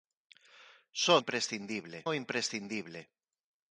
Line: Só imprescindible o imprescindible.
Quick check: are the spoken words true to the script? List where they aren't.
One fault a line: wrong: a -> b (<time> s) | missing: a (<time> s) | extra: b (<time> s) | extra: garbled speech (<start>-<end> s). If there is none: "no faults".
no faults